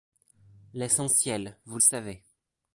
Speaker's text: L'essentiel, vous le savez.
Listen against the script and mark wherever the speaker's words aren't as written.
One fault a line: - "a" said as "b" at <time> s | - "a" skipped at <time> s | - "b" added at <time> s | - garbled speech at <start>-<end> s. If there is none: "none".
none